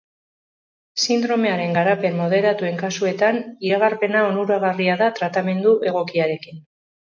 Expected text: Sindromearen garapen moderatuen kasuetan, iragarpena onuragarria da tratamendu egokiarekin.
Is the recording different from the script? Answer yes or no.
no